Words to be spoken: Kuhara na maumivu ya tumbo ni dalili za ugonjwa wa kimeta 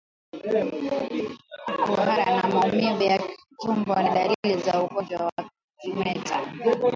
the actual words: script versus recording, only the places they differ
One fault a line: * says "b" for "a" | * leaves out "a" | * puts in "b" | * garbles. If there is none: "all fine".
all fine